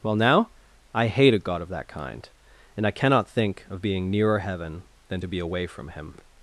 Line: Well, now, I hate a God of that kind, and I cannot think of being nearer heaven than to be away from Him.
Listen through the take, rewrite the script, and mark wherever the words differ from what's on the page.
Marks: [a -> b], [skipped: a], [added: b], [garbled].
Well, now, I hate a God of that kind, and I cannot think of being nearer heaven than to be away from Him.